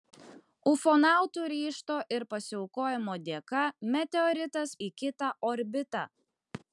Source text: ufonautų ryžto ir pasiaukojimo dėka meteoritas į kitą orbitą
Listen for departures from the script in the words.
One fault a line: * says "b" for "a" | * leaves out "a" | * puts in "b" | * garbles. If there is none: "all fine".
all fine